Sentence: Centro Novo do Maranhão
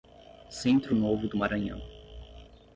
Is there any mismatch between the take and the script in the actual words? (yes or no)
no